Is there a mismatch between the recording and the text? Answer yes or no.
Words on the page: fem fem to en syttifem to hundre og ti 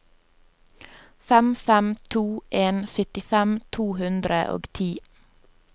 no